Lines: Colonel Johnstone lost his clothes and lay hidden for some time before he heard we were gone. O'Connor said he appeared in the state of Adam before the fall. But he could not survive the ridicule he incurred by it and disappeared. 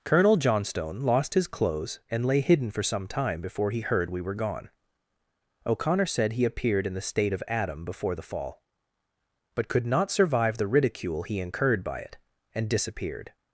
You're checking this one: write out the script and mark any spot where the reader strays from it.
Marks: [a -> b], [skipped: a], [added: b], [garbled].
Colonel Johnstone lost his clothes and lay hidden for some time before he heard we were gone. O'Connor said he appeared in the state of Adam before the fall. But [skipped: he] could not survive the ridicule he incurred by it and disappeared.